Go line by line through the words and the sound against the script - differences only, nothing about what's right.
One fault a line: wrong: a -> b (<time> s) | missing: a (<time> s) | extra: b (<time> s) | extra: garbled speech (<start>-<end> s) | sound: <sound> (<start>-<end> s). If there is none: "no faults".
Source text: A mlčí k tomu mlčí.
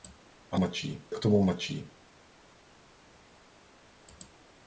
no faults